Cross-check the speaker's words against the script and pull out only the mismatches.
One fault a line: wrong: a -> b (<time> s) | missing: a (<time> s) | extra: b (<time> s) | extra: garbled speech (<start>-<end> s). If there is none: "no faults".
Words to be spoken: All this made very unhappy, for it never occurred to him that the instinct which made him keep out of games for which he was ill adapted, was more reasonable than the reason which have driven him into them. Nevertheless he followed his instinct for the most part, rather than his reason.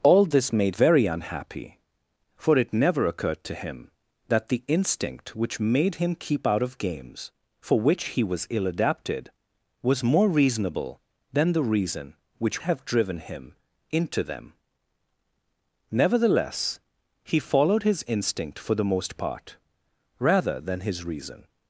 no faults